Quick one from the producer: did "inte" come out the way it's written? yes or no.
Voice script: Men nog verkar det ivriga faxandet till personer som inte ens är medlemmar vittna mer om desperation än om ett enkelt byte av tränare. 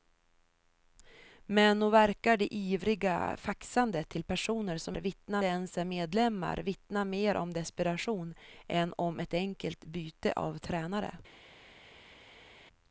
no